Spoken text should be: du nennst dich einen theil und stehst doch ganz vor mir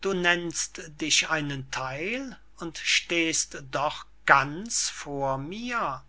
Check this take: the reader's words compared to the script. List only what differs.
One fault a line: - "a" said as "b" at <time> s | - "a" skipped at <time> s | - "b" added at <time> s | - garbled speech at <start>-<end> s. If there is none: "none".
none